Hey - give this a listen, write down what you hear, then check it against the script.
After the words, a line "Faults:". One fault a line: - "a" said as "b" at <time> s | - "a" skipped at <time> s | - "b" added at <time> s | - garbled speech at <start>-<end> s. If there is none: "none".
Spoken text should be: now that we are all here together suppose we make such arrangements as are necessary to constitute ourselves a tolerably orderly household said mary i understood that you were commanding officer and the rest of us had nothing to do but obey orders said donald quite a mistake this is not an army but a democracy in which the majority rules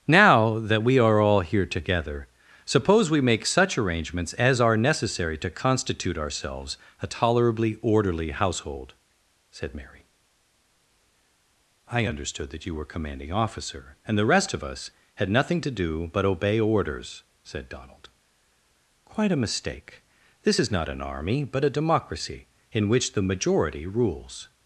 now that we are all here together suppose we make such arrangements as are necessary to constitute ourselves a tolerably orderly household said mary i understood that you were commanding officer and the rest of us had nothing to do but obey orders said donald quite a mistake this is not an army but a democracy in which the majority rules
Faults:
none